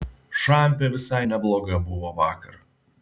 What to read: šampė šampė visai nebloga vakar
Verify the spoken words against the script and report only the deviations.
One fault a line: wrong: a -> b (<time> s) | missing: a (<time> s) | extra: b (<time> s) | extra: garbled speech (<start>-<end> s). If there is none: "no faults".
missing: šampė (0.9 s)
extra: buvo (1.9 s)